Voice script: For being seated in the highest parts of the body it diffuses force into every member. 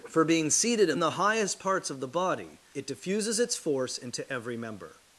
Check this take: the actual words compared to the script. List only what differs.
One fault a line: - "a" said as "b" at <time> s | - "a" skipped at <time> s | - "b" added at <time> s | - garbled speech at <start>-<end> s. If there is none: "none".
- "its" added at 3.4 s